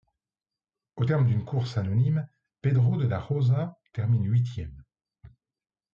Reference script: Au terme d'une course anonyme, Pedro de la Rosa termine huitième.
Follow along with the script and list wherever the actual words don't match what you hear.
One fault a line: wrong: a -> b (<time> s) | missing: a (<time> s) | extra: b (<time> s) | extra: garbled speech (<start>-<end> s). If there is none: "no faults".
no faults